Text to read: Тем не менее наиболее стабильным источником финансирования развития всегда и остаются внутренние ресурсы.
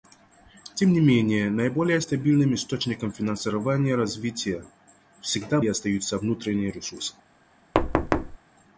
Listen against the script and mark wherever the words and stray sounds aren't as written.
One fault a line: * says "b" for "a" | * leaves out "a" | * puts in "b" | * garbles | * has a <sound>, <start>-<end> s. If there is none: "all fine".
* has a thud, 7.7-8.4 s